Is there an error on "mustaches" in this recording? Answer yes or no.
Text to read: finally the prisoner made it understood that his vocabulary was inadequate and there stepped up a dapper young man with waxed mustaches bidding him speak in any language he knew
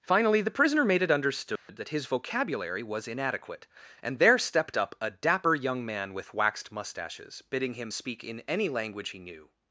no